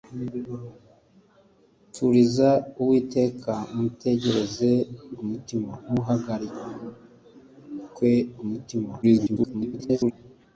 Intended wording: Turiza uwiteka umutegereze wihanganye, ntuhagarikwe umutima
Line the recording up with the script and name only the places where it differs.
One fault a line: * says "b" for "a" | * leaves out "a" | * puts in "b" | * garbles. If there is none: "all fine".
* says "umutima" for "wihanganye"
* garbles